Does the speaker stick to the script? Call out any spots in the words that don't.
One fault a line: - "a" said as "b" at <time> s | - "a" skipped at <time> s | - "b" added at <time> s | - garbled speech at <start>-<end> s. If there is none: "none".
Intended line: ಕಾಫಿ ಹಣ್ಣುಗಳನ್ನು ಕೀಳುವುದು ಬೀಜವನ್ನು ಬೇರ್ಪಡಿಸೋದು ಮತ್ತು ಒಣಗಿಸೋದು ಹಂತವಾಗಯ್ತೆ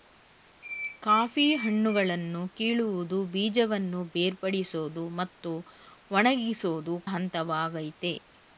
none